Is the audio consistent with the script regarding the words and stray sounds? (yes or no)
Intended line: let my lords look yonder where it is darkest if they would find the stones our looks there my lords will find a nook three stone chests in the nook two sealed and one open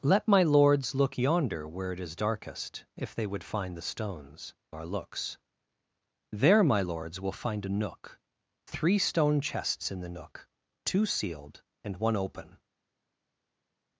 yes